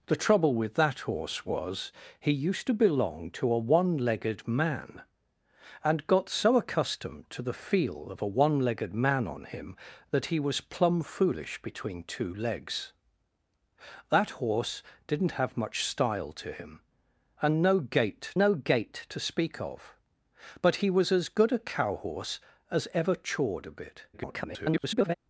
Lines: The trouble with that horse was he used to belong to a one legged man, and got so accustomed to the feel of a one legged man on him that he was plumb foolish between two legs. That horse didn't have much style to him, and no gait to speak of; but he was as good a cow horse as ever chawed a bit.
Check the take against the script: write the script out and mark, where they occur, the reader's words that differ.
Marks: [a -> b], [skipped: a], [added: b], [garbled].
The trouble with that horse was he used to belong to a one legged man, and got so accustomed to the feel of a one legged man on him that he was plumb foolish between two legs. That horse didn't have much style to him, and no gait [added: no gait] to speak of; but he was as good a cow horse as ever chawed a bit. [garbled]